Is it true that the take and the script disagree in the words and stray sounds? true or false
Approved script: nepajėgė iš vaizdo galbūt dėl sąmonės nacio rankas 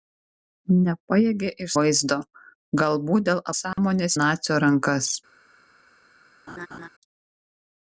true